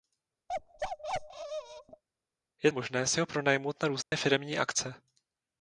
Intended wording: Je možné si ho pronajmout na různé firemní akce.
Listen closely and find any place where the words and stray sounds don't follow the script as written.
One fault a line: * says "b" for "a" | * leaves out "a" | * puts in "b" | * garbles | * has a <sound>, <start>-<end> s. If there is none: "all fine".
* has a bark, 0.5-2.0 s
* has a dropout, 4.0-4.1 s